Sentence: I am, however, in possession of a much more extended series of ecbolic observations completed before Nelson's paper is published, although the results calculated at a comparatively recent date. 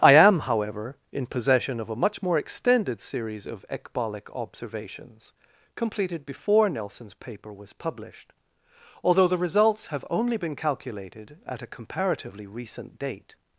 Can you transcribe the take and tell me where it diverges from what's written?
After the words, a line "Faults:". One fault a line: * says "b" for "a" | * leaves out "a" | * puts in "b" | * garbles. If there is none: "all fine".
I am, however, in possession of a much more extended series of ecbolic observations completed before Nelson's paper was published, although the results have only been calculated at a comparatively recent date.
Faults:
* says "was" for "is"
* puts in "have only been"